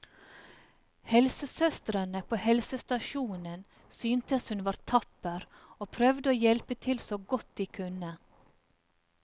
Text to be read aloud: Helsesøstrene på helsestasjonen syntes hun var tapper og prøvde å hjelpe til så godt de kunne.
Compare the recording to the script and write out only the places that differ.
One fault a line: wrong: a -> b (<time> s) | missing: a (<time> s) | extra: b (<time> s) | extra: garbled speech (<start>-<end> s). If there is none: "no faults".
no faults